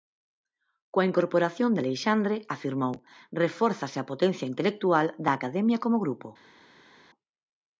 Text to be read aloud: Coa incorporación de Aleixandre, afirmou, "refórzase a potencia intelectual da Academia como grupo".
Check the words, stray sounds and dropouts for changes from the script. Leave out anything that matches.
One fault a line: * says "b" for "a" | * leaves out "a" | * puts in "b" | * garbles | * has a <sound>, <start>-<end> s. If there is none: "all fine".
all fine